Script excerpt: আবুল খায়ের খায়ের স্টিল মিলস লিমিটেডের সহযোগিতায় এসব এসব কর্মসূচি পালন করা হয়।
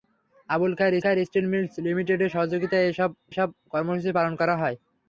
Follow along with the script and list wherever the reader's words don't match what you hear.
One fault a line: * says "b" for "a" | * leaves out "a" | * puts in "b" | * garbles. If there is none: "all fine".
all fine